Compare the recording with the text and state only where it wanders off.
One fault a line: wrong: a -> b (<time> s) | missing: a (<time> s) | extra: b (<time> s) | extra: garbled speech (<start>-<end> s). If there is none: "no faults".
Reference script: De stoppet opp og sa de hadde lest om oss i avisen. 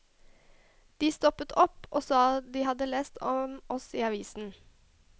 no faults